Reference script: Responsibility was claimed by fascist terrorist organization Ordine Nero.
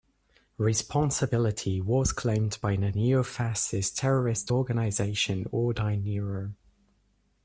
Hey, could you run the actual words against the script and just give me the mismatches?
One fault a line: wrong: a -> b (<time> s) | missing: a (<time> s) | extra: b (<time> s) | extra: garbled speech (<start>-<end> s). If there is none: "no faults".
extra: the neo (2.8 s)